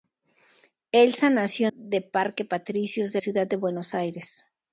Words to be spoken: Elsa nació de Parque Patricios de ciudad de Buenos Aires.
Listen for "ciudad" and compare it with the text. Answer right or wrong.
right